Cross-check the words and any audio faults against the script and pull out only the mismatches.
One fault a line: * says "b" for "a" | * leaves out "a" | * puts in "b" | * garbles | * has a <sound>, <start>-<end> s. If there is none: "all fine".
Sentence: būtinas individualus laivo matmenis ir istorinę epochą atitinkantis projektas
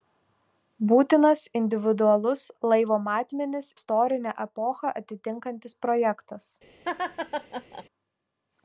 * leaves out "ir"
* has a laugh, 6.8-7.8 s